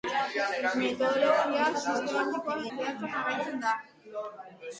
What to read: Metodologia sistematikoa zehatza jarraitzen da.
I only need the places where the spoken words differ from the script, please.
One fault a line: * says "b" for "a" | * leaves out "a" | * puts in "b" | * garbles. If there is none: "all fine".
all fine